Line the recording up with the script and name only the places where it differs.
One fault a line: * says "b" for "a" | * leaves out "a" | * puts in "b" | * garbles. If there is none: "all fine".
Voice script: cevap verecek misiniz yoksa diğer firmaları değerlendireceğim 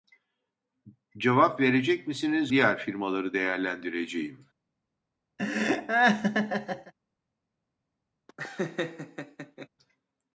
* leaves out "yoksa"